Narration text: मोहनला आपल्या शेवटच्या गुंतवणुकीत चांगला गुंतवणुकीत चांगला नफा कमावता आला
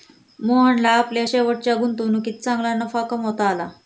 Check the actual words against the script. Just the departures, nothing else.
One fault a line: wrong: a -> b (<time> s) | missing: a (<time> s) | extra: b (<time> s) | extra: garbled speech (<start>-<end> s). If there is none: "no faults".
missing: गुंतवणुकीत चांगला (2.7 s)